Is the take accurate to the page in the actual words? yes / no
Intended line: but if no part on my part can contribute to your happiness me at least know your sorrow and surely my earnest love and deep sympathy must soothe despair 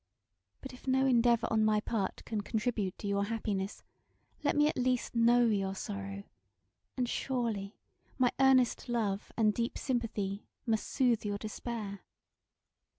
no